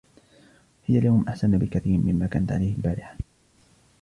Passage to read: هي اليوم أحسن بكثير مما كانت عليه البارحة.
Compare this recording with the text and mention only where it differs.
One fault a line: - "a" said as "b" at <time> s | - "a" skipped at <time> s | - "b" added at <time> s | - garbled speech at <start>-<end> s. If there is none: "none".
none